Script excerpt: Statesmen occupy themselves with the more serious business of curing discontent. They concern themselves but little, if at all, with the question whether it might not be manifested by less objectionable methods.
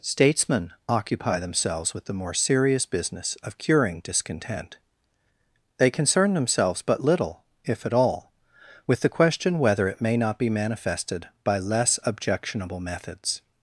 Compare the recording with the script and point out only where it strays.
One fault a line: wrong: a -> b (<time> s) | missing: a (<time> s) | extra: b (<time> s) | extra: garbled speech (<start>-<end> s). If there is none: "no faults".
wrong: might -> may (10.0 s)